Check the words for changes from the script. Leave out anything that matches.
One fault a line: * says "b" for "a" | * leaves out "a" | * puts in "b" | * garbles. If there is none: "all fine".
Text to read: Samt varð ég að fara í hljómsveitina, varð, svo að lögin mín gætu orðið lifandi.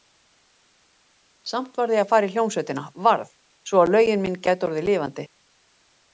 all fine